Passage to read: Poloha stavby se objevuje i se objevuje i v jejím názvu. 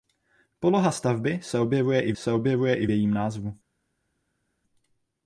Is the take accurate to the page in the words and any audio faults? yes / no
yes